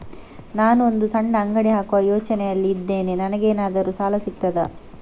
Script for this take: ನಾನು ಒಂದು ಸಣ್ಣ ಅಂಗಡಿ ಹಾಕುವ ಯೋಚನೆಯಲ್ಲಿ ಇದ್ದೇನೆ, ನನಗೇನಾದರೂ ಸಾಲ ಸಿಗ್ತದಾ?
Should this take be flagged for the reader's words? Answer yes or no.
no